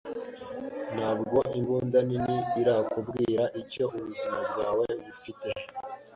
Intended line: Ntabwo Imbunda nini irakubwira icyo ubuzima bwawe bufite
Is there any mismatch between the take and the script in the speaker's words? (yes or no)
no